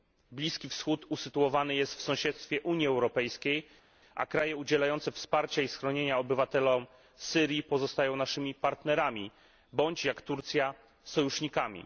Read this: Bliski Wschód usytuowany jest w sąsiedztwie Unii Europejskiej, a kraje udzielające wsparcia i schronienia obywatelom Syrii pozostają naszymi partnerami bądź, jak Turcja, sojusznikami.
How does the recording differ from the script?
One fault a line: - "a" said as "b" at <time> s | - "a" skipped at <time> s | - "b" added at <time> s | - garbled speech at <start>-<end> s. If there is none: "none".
none